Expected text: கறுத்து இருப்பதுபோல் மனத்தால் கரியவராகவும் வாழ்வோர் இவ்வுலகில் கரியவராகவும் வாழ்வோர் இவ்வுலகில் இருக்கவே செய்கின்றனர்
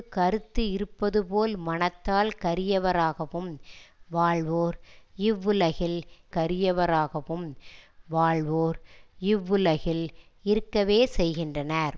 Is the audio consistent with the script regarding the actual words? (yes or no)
yes